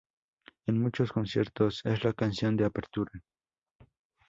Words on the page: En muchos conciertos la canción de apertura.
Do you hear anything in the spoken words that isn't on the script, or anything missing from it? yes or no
yes